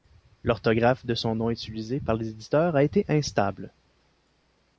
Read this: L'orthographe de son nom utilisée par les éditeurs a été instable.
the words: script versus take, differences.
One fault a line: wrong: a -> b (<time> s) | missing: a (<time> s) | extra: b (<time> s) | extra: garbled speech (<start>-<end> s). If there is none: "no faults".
no faults